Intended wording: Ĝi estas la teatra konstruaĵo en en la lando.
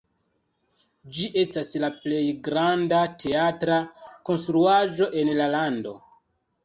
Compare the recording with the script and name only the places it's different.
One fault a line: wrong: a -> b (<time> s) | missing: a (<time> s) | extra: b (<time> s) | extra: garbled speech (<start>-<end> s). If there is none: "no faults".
extra: plej granda (2.0 s)
missing: en (5.3 s)